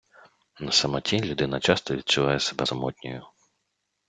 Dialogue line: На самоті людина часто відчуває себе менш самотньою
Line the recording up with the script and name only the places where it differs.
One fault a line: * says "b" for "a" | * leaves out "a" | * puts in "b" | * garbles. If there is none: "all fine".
* leaves out "менш"